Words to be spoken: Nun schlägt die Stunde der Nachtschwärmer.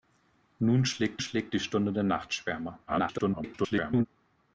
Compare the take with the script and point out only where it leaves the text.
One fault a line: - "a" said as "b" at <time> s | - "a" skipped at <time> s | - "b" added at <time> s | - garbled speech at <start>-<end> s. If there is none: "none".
- "schlägt" added at 1.2 s
- garbled speech at 2.9-4.1 s